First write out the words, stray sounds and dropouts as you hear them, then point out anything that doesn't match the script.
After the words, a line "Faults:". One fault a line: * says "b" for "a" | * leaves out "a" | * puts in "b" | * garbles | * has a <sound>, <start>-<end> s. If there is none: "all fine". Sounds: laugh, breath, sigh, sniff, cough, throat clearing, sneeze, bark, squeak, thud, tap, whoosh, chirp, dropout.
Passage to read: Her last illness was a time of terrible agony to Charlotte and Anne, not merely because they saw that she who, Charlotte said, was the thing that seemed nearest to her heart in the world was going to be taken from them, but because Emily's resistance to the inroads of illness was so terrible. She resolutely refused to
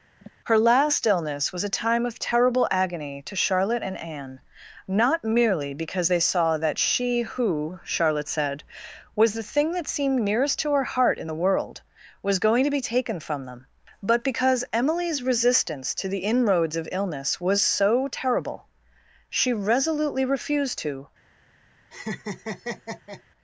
Her last illness was a time of terrible agony to Charlotte and Anne, not merely because they saw that she who, Charlotte said, was the thing that seemed nearest to her heart in the world was going to be taken from them, but because Emily's resistance to the inroads of illness was so terrible. She resolutely refused to
Faults:
* has a sigh, 0.2-0.3 s
* has a laugh, 21.9-23.2 s